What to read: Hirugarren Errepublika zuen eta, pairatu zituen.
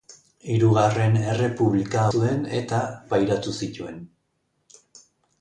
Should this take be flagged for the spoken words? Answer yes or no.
no